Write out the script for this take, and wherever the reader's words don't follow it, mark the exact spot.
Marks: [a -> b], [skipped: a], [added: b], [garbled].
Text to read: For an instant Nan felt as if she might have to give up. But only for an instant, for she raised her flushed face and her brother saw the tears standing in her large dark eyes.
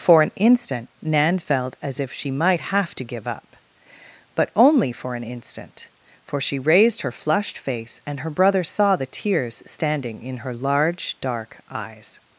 For an instant Nan felt as if she might have to give up. But only for an instant, for she raised her flushed face and her brother saw the tears standing in her large dark eyes.